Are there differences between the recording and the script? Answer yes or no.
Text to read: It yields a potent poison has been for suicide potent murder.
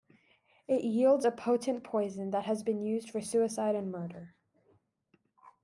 yes